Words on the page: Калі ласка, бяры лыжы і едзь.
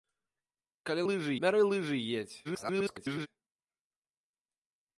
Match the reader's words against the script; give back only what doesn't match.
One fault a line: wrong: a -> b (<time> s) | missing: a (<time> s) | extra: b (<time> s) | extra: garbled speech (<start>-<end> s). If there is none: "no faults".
wrong: ласка -> лыжы (1.1 s)
extra: garbled speech (2.4-3.3 s)